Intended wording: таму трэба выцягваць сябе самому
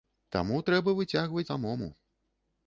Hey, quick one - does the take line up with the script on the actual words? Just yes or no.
no